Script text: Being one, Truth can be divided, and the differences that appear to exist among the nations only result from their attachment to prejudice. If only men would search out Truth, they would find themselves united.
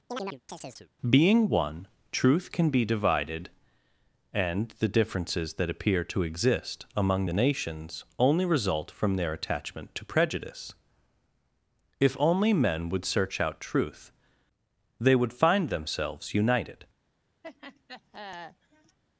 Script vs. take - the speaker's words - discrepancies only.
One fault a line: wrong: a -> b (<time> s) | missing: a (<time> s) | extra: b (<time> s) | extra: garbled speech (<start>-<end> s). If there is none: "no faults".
no faults